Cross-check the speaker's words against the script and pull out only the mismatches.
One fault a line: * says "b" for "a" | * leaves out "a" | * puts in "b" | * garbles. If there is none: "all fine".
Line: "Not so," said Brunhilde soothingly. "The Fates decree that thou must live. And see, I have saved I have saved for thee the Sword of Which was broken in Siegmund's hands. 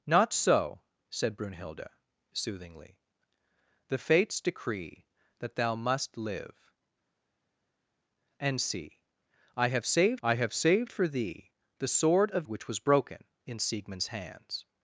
all fine